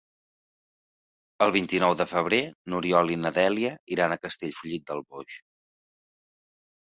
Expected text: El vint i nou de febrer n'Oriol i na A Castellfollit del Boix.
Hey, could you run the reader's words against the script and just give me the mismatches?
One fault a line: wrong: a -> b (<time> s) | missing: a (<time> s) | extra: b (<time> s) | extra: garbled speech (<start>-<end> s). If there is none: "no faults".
extra: Dèlia iran (3.4 s)